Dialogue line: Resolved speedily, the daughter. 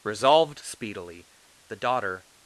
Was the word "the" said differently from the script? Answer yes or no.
no